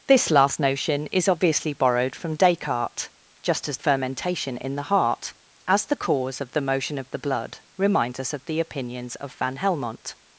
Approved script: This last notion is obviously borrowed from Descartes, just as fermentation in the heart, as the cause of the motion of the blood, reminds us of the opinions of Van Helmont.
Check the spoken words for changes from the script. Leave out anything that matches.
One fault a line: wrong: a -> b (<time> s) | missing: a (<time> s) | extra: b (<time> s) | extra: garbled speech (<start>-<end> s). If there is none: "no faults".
no faults